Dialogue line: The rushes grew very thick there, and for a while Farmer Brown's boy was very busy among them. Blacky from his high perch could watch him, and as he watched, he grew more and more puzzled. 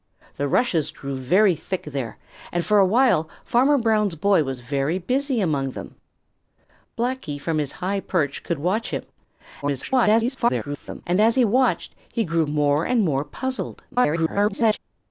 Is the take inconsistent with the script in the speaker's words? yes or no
yes